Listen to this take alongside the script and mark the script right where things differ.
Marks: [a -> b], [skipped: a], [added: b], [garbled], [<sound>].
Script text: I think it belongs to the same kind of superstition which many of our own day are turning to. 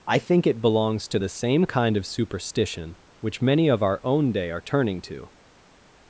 I think it belongs to the same kind of superstition which many of our own day are turning to.